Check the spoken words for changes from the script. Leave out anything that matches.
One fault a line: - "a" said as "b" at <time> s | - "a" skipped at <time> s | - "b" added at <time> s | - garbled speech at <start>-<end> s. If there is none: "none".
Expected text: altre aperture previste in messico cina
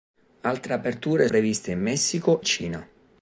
none